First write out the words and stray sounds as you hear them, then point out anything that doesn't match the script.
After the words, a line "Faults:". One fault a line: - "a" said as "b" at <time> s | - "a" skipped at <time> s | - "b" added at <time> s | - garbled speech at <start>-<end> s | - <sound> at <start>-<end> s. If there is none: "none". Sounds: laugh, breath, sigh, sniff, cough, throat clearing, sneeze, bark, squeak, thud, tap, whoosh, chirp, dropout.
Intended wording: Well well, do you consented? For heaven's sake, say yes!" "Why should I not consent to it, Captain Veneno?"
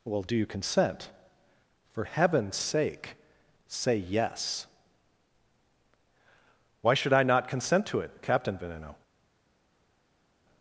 Well, do you consent? For heaven's sake, say yes!" "Why should I not consent to it, Captain Veneno?"
Faults:
- "well" skipped at 0.2 s
- "consented" said as "consent" at 0.5 s